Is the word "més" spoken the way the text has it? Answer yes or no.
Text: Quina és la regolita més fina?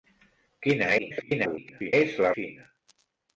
no